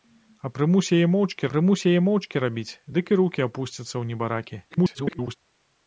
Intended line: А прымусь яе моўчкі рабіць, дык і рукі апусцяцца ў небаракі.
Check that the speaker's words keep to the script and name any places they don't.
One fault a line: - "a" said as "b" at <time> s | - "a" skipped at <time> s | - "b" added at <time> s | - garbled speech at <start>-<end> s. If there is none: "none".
- "прымусь яе моўчкі" added at 1.5 s
- garbled speech at 4.7-5.4 s